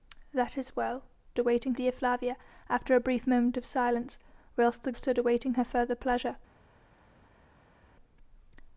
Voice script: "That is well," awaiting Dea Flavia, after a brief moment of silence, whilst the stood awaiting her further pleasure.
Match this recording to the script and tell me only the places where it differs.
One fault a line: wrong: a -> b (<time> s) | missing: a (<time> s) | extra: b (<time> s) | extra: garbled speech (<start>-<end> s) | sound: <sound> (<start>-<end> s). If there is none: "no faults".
no faults